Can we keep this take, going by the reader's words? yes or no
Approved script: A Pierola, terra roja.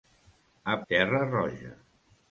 no